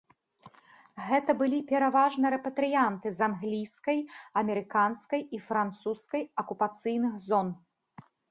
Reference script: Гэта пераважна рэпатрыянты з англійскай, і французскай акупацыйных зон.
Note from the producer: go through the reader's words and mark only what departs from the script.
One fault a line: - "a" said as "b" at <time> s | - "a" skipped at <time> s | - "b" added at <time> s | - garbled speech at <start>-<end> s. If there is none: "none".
- "былі" added at 1.4 s
- "амерыканскай" added at 4.4 s